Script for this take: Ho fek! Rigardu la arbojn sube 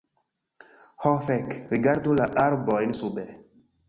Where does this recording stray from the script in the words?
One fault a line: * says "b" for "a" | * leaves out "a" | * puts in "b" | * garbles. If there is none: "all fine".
all fine